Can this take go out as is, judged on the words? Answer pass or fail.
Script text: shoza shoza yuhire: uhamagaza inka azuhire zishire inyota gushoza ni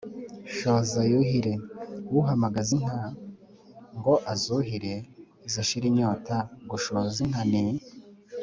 fail